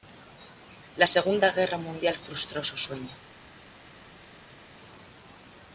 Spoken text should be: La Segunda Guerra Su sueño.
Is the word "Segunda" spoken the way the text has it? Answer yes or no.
yes